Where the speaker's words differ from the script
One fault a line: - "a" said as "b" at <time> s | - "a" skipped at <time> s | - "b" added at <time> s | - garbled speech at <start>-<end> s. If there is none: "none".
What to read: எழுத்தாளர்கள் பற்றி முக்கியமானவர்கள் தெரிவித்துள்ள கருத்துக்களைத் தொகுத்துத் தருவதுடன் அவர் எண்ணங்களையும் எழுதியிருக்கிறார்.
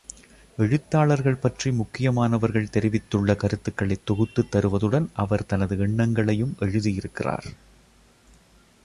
- "தனது" added at 5.5 s